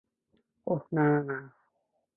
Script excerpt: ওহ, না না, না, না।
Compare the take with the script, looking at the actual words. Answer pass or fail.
fail